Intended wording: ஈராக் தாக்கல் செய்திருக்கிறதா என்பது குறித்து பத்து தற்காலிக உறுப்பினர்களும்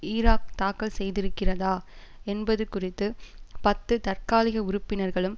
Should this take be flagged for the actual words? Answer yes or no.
no